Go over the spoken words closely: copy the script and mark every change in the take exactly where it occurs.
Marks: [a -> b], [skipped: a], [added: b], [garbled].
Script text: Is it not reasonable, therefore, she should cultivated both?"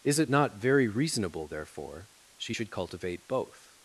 Is it not [added: very] reasonable, therefore, she should [cultivated -> cultivate] both?"